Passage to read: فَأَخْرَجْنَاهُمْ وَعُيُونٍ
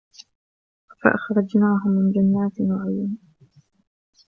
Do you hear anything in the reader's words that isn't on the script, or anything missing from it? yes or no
yes